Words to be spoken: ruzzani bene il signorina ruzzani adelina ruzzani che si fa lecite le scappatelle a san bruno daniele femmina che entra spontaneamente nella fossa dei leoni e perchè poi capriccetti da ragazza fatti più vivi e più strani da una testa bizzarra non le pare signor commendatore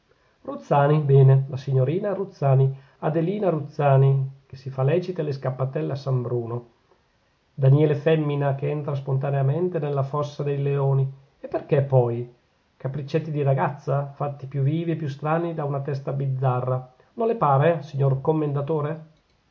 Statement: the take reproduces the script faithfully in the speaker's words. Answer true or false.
false